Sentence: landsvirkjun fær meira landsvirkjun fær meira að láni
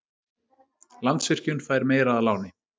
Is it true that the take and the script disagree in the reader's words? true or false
true